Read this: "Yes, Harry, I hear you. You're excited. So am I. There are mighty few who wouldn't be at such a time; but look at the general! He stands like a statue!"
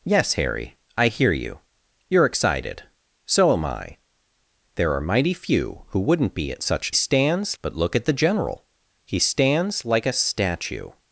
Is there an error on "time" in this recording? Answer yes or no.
yes